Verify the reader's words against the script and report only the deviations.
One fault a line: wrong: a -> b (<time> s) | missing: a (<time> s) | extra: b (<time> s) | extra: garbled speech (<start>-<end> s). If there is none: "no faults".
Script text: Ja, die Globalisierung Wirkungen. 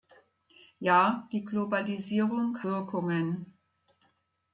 no faults